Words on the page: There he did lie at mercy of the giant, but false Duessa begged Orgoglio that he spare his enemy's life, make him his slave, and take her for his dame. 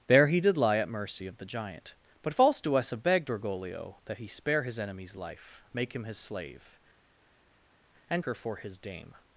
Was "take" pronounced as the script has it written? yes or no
no